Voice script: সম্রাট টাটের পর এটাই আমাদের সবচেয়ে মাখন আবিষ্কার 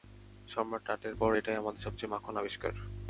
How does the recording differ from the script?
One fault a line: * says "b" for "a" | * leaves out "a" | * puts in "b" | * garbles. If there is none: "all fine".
all fine